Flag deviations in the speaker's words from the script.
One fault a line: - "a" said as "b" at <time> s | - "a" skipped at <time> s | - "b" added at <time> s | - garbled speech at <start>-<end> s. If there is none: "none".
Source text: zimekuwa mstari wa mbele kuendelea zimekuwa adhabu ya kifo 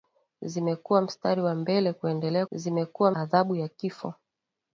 none